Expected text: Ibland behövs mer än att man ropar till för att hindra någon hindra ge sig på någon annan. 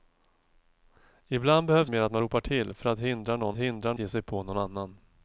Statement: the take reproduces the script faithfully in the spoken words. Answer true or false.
true